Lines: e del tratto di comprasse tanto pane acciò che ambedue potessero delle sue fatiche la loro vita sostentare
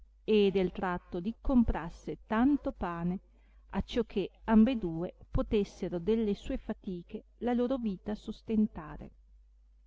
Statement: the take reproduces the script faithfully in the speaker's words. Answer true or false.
true